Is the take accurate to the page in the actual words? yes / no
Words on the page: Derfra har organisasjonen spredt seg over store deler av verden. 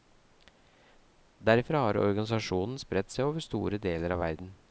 yes